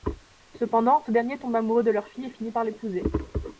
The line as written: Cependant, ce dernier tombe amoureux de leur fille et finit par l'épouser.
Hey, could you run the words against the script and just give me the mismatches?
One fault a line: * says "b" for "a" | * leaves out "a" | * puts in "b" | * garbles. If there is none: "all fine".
all fine